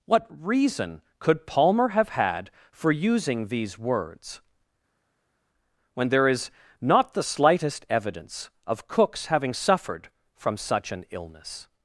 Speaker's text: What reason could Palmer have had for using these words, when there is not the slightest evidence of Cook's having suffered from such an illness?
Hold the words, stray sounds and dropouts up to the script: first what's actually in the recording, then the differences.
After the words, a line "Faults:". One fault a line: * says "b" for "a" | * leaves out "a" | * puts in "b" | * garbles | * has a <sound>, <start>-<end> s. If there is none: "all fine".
What reason could Palmer have had for using these words, when there is not the slightest evidence of Cook's having suffered from such an illness?
Faults:
all fine